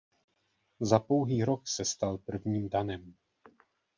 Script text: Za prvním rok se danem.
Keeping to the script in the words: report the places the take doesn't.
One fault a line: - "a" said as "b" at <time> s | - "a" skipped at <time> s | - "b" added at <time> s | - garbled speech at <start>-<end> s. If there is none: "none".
- "prvním" said as "pouhý" at 1.0 s
- "stal prvním" added at 1.9 s